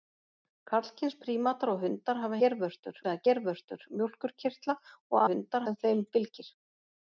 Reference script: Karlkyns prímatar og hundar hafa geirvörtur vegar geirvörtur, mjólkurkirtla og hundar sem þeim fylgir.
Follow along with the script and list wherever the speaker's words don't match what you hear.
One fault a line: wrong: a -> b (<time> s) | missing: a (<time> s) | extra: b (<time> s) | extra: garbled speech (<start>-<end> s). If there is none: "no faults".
no faults